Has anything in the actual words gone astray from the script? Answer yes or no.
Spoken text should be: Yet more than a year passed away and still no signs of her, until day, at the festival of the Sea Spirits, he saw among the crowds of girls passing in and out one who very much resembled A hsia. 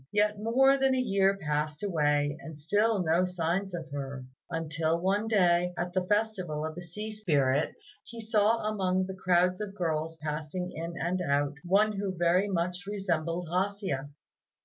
yes